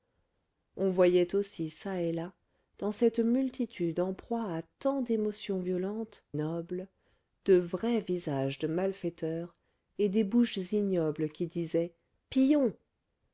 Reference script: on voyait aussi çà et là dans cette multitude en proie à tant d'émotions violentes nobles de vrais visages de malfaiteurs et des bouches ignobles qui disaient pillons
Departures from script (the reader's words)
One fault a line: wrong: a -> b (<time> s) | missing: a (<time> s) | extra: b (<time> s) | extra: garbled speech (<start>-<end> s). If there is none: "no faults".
no faults